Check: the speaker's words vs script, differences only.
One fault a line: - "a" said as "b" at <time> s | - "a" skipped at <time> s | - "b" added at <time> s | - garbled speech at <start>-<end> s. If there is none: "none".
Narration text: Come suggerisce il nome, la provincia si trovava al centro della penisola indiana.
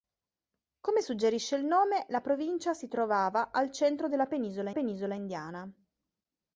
- "penisola" added at 4.7 s